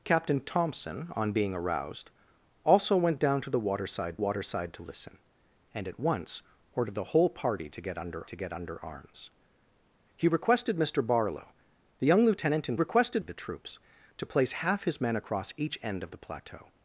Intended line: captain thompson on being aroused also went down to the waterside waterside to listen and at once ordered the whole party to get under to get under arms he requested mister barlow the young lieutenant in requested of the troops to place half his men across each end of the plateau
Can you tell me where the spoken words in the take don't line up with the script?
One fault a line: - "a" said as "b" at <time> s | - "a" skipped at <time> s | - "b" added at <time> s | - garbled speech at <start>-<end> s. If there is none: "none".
none